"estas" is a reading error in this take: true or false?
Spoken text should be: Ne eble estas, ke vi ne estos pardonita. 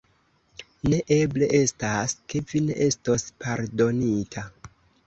false